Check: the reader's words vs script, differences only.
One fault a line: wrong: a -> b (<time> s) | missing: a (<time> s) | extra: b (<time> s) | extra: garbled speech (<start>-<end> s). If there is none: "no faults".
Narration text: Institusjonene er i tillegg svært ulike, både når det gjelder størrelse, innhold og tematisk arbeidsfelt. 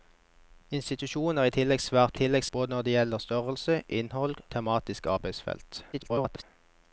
wrong: ulike -> tillegg (2.2 s)
missing: og (4.4 s)
extra: garbled speech (5.9-6.4 s)